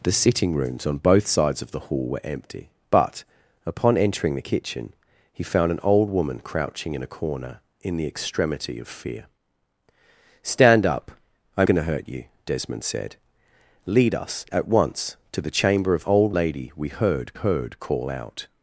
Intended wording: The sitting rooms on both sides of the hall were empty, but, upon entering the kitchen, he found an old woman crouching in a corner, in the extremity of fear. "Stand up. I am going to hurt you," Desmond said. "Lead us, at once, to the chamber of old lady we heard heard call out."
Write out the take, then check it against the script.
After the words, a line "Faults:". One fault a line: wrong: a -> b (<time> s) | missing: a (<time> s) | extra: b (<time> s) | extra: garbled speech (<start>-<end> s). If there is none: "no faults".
The sitting rooms on both sides of the hall were empty, but, upon entering the kitchen, he found an old woman crouching in a corner, in the extremity of fear. "Stand up. I am going to hurt you," Desmond said. "Lead us, at once, to the chamber of old lady we heard heard call out."
Faults:
no faults